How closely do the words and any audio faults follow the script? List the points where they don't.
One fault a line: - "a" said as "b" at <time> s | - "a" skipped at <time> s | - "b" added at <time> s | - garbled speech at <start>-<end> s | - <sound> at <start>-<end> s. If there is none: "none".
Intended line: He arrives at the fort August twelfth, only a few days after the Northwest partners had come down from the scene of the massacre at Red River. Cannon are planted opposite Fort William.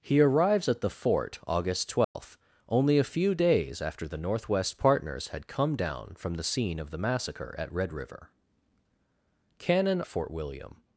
- dropout at 2.0-2.2 s
- "are planted opposite" skipped at 10.0 s